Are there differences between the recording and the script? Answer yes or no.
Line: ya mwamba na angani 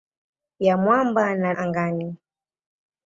no